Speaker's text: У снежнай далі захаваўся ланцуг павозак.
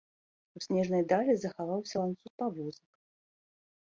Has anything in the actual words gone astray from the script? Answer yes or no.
no